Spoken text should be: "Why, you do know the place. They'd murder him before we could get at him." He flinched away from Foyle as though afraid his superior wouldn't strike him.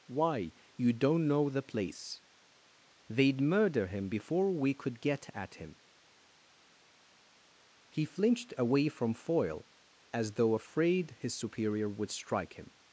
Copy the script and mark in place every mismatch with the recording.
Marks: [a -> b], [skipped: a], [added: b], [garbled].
"Why, you [do -> don't] know the place. They'd murder him before we could get at him." He flinched away from Foyle as though afraid his superior [wouldn't -> would] strike him.